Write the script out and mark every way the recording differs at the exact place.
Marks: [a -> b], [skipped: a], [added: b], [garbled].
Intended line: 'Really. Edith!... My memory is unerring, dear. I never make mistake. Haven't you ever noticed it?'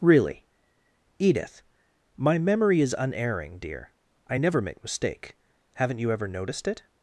'Really. Edith!... My memory is unerring, dear. I never make mistake. Haven't you ever noticed it?'